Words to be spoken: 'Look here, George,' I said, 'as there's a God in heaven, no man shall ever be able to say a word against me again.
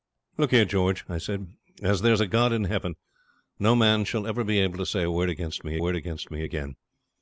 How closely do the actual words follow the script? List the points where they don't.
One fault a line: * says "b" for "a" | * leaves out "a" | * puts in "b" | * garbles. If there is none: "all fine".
* puts in "word against me"